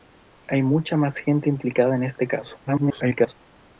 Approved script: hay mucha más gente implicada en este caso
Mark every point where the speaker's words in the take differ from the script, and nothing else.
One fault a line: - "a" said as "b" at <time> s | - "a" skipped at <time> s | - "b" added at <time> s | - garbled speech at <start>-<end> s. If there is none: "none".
- garbled speech at 2.7-3.3 s